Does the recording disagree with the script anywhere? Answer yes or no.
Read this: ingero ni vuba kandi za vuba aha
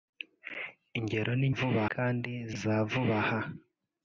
no